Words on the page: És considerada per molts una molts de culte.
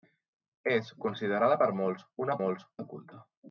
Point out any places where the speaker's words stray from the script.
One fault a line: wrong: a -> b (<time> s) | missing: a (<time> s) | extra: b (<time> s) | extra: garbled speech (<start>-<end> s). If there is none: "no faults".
no faults